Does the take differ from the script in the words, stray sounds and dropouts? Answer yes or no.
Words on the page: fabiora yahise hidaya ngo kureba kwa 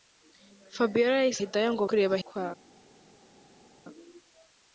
no